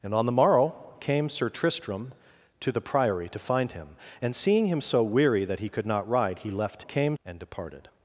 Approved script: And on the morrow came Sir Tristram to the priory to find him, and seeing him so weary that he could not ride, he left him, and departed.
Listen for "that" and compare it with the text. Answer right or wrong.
right